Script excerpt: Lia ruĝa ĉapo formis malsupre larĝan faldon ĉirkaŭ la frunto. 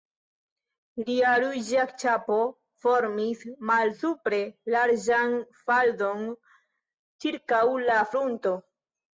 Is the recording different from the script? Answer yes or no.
no